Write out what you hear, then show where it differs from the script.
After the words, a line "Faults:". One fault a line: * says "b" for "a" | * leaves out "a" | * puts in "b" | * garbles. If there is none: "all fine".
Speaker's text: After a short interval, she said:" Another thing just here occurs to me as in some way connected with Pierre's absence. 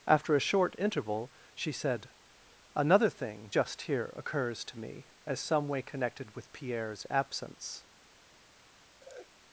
After a short interval, she said:" Another thing just here occurs to me as some way connected with Pierre's absence.
Faults:
* leaves out "in"